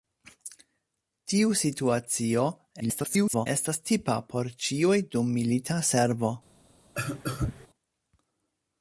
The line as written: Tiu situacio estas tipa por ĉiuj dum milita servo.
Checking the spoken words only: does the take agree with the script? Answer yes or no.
no